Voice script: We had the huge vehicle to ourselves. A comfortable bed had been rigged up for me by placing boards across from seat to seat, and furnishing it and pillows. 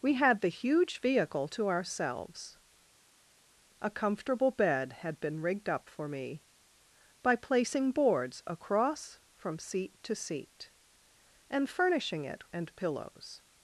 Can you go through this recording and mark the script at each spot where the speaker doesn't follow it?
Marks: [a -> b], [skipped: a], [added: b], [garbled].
We had the huge vehicle to ourselves. A comfortable bed had been rigged up for me by placing boards across from seat to seat, and furnishing it and pillows.